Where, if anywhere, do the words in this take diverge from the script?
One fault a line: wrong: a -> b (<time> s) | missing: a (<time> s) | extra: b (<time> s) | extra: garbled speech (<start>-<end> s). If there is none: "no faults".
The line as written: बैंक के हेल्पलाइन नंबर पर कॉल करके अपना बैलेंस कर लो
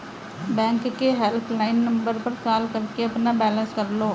no faults